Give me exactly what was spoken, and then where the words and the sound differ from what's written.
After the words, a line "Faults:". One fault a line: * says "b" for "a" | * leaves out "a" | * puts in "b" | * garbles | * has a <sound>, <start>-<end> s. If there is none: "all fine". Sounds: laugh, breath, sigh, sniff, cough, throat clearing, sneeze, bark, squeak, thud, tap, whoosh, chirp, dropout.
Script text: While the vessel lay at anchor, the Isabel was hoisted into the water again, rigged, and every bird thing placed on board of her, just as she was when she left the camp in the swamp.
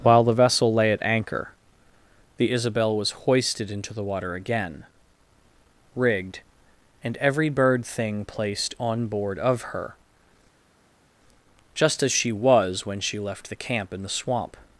While the vessel lay at anchor, the Isabel was hoisted into the water again, rigged, and every bird thing placed on board of her, just as she was when she left the camp in the swamp.
Faults:
all fine